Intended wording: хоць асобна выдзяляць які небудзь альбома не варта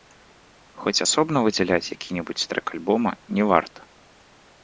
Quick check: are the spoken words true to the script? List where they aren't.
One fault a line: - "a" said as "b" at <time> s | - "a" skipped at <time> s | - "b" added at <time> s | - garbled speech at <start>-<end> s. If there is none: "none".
- "трэк" added at 2.5 s